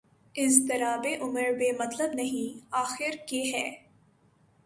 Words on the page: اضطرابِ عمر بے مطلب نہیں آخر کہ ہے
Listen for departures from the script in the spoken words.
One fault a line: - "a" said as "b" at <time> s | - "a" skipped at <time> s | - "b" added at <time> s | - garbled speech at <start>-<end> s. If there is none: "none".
none